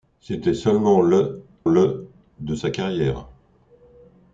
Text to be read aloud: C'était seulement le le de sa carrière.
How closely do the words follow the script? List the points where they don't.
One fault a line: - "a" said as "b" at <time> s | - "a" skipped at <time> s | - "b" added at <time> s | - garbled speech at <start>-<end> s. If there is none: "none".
none